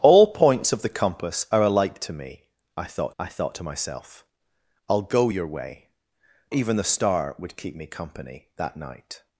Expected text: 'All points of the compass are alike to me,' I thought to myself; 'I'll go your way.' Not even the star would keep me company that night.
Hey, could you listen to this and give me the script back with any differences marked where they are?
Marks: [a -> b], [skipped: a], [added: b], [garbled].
'All points of the compass are alike to me,' I thought [added: I thought] to myself; 'I'll go your way.' [skipped: Not] even the star would keep me company that night.